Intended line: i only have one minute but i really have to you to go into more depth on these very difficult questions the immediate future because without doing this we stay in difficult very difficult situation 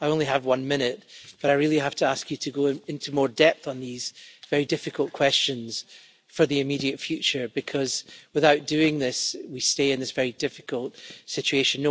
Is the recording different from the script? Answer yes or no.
yes